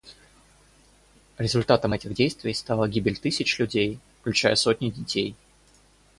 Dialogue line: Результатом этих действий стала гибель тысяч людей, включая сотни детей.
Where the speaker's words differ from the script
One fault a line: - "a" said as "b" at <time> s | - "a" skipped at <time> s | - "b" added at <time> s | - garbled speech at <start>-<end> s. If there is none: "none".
none